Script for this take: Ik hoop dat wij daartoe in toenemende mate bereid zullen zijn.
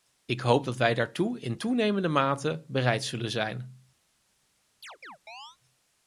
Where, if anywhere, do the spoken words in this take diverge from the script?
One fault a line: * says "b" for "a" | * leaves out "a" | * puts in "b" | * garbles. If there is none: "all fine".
all fine